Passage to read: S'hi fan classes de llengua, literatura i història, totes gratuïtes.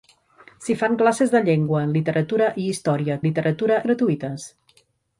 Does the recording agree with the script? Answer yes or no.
no